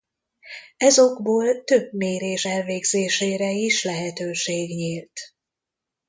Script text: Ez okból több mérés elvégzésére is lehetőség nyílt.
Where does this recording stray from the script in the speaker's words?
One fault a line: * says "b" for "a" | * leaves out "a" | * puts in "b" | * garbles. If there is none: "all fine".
all fine